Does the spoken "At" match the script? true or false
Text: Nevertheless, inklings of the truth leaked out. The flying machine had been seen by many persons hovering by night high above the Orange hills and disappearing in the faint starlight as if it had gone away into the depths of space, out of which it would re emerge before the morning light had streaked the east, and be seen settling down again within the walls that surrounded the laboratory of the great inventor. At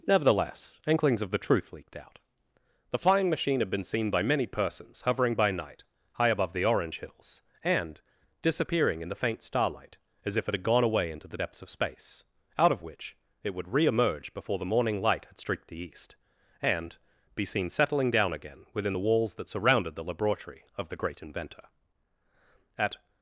true